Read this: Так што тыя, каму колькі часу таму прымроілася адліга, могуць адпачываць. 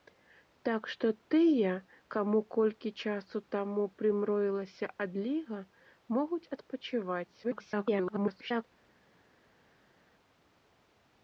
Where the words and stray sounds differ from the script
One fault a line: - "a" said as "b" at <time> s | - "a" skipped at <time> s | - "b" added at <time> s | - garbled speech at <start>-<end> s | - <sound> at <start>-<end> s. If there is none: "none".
- garbled speech at 7.4-8.6 s